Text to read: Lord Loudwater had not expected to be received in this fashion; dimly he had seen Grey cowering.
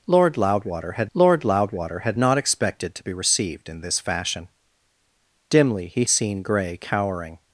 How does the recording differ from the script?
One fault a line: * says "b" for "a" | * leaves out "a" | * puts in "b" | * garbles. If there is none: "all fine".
* puts in "lord Loudwater had"
* leaves out "had"